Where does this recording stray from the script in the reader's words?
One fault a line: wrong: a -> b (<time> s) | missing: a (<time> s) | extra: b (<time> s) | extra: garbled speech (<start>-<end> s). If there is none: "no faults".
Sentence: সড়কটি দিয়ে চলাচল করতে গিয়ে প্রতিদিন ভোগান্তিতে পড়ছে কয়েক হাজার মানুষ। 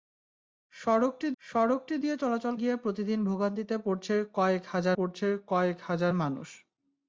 extra: সড়কটি (1.4 s)
missing: করতে (2.5 s)
extra: পড়ছে কয়েক হাজার (5.0 s)